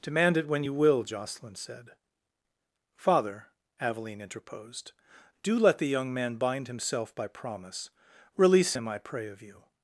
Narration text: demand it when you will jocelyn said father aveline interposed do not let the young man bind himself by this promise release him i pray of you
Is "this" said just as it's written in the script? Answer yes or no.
no